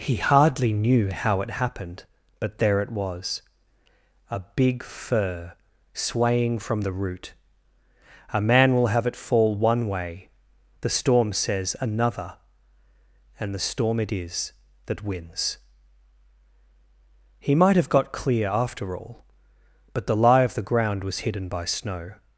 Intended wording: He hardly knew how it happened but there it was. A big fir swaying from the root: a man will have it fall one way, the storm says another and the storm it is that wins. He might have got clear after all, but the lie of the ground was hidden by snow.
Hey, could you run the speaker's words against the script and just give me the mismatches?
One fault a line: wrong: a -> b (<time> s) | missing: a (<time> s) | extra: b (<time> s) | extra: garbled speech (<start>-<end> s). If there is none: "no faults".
no faults